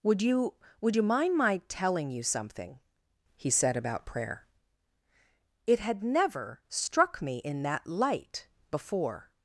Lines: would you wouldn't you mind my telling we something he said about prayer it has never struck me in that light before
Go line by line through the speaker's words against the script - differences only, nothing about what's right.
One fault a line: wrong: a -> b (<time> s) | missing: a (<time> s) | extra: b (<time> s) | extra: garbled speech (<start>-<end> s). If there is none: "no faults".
wrong: wouldn't -> would (0.8 s)
wrong: we -> you (2.1 s)
wrong: has -> had (5.8 s)